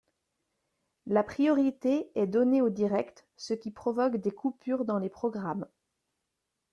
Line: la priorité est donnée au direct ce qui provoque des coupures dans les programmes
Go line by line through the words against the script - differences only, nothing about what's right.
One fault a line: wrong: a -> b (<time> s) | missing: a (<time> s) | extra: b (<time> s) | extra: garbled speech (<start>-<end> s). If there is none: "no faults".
no faults